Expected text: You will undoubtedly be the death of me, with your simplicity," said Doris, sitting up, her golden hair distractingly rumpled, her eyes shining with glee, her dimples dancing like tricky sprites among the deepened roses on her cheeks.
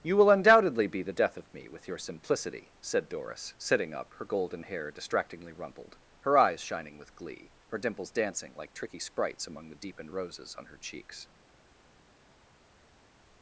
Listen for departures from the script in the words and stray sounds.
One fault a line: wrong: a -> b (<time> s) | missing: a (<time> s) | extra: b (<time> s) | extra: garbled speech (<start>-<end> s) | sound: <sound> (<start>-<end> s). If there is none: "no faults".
no faults